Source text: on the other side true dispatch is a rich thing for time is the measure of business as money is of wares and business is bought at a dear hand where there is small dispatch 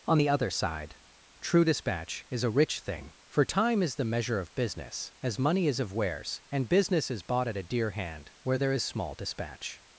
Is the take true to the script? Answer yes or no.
yes